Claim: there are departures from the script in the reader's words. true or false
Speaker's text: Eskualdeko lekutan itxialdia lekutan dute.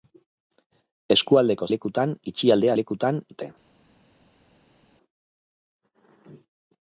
false